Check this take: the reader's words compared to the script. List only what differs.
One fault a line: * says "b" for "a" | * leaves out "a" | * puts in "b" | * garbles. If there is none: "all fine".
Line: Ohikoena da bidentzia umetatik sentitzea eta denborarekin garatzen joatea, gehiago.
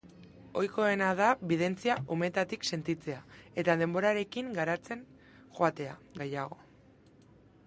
all fine